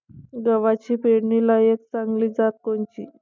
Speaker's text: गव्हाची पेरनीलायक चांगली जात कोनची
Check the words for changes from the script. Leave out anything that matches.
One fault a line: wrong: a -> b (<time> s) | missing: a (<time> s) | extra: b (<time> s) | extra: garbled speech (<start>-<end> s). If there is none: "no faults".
no faults